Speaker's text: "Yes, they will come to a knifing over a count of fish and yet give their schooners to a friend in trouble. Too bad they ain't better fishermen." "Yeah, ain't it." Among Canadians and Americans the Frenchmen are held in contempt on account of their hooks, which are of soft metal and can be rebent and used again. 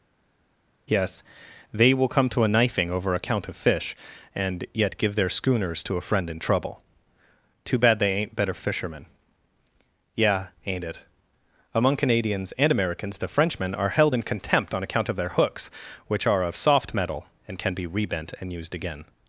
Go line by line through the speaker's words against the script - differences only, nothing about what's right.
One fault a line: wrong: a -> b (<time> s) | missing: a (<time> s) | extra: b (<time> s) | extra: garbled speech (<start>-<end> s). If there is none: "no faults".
no faults